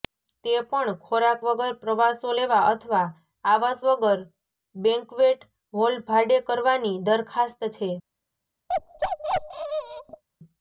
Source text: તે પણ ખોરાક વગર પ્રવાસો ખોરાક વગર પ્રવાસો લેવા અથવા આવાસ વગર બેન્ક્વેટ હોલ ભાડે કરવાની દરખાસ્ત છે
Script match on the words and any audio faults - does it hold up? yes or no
no